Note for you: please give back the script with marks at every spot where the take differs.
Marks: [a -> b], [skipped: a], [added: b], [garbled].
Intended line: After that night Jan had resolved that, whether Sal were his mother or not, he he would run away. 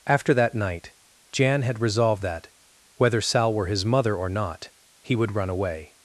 After that night Jan had resolved that, whether Sal were his mother or not, he [skipped: he] would run away.